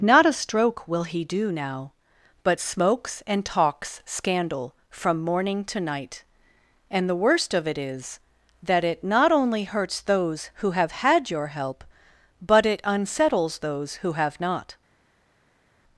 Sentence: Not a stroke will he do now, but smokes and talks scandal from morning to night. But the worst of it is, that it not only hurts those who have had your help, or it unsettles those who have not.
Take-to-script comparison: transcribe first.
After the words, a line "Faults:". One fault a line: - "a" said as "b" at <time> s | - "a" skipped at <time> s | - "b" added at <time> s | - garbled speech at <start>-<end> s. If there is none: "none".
Not a stroke will he do now, but smokes and talks scandal from morning to night. And the worst of it is, that it not only hurts those who have had your help, but it unsettles those who have not.
Faults:
- "But" said as "And" at 6.9 s
- "or" said as "but" at 12.4 s